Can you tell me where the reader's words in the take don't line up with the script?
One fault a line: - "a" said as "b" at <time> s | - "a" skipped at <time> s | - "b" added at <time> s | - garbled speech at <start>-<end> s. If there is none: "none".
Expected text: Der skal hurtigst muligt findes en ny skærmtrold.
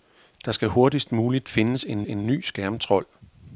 - "en" added at 2.0 s